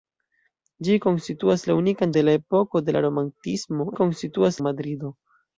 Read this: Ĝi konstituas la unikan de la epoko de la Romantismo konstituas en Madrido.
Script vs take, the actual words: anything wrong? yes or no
no